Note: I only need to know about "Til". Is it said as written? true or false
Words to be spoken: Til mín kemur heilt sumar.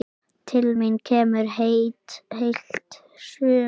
true